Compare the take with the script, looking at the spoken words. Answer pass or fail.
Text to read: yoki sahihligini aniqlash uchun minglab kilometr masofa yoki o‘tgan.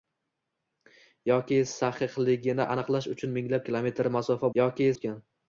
pass